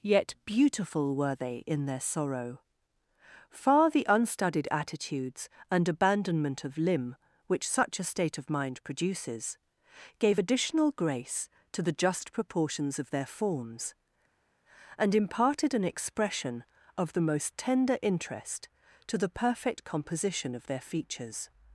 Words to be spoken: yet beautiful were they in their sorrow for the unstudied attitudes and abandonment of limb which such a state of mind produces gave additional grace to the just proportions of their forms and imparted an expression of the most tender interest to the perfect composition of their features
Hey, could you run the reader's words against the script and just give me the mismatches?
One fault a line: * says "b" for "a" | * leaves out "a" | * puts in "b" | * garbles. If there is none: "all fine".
* says "far" for "for"